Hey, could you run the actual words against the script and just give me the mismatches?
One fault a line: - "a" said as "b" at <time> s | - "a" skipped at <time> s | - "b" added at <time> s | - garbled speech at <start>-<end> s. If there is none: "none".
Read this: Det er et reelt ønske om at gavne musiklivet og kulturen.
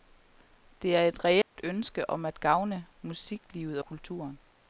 - "og" skipped at 3.8 s